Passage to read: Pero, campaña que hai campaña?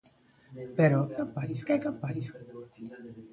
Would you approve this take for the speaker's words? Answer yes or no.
yes